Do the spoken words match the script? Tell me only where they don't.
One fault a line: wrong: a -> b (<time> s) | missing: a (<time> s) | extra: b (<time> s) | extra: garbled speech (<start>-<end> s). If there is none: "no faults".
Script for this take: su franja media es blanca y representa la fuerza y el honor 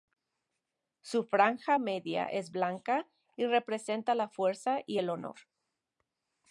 no faults